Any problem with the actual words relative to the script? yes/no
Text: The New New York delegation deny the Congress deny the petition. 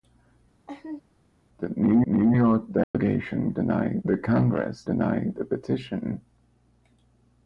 no